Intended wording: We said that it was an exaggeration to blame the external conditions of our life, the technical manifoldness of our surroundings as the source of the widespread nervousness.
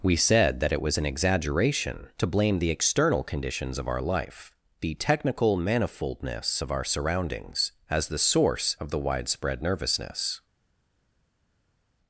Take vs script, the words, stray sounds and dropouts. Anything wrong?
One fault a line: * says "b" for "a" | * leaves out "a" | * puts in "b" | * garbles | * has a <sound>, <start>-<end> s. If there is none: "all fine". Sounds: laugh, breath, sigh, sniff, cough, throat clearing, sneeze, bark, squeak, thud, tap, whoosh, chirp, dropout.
all fine